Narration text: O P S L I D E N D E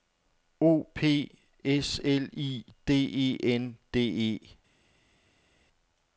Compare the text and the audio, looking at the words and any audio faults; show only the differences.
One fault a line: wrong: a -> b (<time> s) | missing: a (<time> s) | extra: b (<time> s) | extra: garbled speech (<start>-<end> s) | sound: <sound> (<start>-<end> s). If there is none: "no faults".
no faults